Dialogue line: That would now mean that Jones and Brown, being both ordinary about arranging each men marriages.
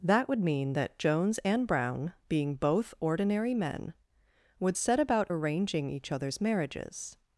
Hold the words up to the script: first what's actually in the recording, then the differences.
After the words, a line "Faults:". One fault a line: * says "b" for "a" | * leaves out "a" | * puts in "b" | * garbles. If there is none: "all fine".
That would mean that Jones and Brown, being both ordinary men, would set about arranging each other's marriages.
Faults:
* leaves out "now"
* puts in "men would set"
* says "other's" for "men"